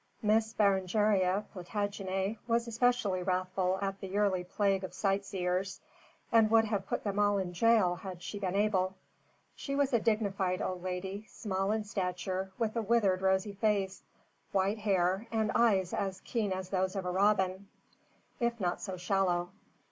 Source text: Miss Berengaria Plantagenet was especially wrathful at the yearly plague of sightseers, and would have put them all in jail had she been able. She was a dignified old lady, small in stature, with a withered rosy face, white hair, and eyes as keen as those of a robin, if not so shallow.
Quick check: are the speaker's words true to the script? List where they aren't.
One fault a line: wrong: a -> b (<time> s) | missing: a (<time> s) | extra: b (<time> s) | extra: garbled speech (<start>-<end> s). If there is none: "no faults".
no faults